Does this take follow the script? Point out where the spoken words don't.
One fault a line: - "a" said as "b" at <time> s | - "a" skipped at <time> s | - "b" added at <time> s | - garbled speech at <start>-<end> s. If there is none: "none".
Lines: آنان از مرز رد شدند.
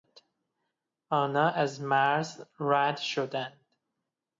none